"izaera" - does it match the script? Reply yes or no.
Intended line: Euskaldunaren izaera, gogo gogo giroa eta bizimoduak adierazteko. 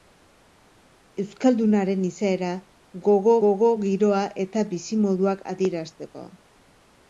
yes